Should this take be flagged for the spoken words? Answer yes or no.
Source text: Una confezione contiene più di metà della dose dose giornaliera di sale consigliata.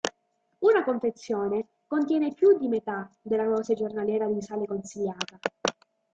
yes